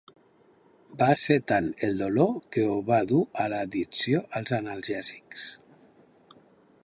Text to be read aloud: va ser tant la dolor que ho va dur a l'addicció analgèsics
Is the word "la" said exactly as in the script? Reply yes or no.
no